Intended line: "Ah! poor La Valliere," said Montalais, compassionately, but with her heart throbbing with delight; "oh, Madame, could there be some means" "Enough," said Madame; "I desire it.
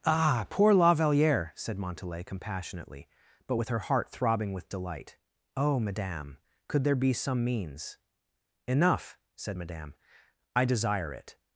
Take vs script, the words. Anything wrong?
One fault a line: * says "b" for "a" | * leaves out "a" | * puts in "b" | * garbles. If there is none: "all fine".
all fine